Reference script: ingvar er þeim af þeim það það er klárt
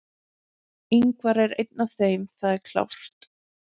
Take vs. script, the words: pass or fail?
fail